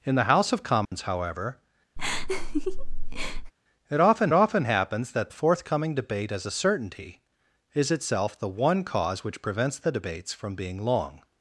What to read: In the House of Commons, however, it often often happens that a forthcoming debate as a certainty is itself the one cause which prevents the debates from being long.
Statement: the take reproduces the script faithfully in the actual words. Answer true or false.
true